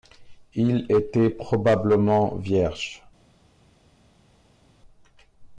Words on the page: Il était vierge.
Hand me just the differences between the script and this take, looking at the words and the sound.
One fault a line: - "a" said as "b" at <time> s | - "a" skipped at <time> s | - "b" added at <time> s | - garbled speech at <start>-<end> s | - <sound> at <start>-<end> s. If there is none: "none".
- "probablement" added at 1.3 s